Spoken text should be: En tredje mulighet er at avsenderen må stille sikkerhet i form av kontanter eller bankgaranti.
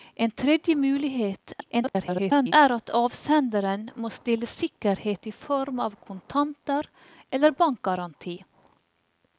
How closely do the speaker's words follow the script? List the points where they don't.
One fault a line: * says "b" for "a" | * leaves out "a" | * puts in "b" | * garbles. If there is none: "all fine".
* garbles